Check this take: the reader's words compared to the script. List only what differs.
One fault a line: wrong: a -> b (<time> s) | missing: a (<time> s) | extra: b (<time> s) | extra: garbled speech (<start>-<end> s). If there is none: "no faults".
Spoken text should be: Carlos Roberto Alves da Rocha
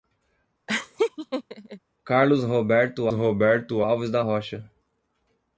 extra: Roberto (3.1 s)